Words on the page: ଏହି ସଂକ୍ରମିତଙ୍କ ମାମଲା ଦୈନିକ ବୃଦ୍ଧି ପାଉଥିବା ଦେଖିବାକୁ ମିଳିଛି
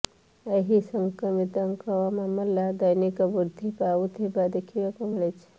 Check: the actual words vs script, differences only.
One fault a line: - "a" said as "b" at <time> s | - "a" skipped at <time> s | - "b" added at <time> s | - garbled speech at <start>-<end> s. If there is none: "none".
none